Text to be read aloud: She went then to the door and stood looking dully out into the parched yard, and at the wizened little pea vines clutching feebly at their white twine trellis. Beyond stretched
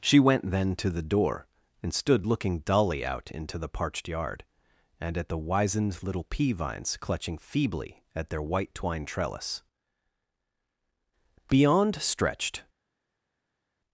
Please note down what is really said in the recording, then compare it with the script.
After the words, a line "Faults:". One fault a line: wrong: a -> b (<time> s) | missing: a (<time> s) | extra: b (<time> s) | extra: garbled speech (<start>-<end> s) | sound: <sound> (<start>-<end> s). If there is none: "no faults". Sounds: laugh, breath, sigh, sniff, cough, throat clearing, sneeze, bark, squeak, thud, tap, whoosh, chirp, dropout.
She went then to the door and stood looking dully out into the parched yard, and at the wizened little pea vines clutching feebly at their white twine trellis. Beyond stretched
Faults:
no faults